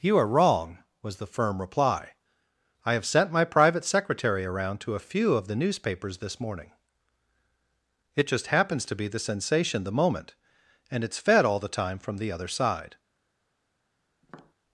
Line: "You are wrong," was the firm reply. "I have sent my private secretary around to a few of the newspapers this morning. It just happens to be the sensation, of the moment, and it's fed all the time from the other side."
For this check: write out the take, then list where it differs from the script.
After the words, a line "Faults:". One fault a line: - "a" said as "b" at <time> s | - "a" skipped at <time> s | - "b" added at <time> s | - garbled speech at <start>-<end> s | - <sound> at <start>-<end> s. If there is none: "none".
"You are wrong," was the firm reply. "I have sent my private secretary around to a few of the newspapers this morning. It just happens to be the sensation, the moment, and it's fed all the time from the other side."
Faults:
- "of" skipped at 9.8 s
- tap at 14.2-14.5 s